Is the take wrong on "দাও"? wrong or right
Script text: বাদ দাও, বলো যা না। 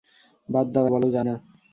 right